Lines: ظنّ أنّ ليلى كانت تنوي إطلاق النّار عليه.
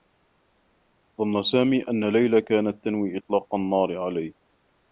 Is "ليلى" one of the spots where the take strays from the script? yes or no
no